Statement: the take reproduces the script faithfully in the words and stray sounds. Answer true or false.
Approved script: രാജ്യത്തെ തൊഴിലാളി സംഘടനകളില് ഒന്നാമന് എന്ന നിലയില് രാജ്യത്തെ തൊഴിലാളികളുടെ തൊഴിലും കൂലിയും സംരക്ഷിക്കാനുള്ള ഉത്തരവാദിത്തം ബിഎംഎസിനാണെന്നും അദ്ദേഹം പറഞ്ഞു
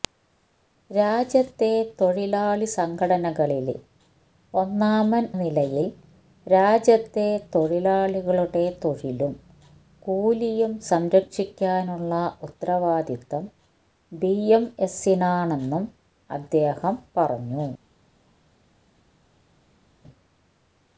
false